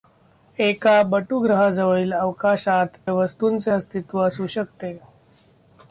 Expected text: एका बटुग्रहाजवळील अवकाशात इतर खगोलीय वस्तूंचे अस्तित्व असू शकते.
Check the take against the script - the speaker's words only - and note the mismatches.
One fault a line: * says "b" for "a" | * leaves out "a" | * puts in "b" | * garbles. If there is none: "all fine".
* leaves out "इतर खगोलीय"